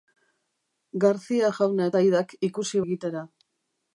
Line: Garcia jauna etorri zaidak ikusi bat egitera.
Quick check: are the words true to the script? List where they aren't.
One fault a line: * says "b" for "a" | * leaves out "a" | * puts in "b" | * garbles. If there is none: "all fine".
* leaves out "etorri"
* leaves out "bat"